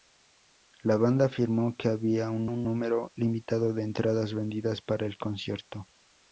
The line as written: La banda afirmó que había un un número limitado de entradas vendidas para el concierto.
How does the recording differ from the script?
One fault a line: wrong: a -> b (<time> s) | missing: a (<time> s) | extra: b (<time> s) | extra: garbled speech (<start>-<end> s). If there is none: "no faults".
no faults